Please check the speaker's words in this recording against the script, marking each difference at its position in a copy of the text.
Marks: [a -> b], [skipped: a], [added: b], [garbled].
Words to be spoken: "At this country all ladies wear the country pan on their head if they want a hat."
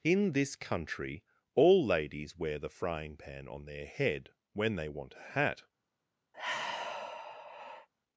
["At -> In] this country all ladies wear the [country -> frying] pan on their head [if -> when] they want a hat."